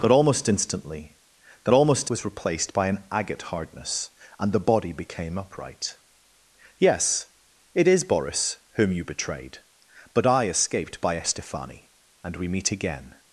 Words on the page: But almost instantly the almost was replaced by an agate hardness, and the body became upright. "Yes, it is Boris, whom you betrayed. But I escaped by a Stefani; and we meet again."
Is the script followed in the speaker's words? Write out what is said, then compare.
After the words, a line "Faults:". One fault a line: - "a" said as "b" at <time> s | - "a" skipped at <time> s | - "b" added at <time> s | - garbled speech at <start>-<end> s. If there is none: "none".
But almost instantly the almost was replaced by an agate hardness, and the body became upright. "Yes, it is Boris, whom you betrayed. But I escaped by a Stefani; and we meet again."
Faults:
none